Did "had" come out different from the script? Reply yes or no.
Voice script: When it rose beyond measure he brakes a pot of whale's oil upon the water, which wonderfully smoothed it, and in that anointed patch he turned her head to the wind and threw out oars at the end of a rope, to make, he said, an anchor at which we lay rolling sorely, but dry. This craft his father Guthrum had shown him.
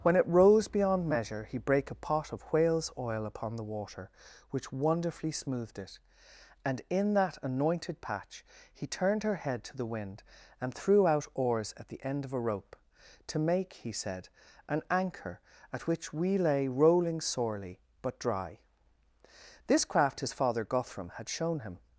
no